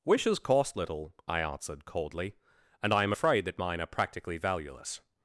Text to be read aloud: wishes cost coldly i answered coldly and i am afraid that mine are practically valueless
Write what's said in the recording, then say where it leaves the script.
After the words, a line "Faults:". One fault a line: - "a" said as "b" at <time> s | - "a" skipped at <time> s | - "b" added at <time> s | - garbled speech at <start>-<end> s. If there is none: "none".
wishes cost little i answered coldly and i am afraid that mine are practically valueless
Faults:
- "coldly" said as "little" at 0.8 s